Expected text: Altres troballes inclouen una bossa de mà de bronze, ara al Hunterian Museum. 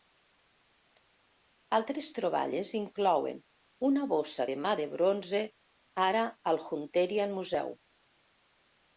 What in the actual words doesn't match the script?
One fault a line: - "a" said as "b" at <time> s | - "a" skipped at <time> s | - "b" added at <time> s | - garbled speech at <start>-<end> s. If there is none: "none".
none